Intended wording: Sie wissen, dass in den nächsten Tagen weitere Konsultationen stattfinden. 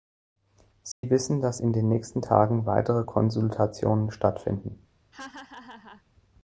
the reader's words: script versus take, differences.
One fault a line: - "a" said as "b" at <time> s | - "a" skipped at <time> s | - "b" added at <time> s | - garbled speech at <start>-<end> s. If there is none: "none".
none